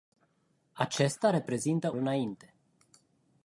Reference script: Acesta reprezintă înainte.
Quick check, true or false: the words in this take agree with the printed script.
true